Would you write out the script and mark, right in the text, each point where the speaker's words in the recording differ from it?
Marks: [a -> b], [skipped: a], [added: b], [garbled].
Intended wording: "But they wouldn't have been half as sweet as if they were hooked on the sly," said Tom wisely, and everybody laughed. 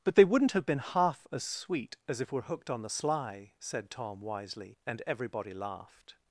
"But they wouldn't have been half as sweet as if [skipped: they] were hooked on the sly," said Tom wisely, and everybody laughed.